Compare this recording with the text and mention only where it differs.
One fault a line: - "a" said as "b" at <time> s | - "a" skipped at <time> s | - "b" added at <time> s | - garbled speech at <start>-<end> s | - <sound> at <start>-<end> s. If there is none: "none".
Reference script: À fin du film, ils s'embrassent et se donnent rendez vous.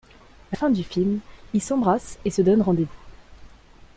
none